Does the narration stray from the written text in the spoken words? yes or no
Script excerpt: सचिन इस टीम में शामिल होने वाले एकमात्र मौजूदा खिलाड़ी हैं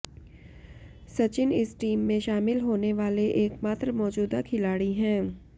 no